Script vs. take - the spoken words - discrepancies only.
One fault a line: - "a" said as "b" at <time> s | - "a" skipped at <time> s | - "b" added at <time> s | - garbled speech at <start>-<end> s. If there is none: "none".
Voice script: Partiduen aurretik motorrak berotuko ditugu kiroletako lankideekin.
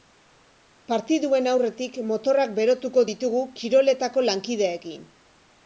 none